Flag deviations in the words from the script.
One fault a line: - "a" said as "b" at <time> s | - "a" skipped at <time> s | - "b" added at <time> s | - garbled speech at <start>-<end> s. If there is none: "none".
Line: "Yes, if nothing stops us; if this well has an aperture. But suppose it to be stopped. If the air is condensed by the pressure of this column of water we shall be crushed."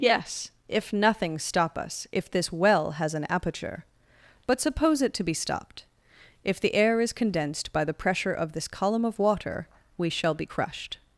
- "stops" said as "stop" at 1.4 s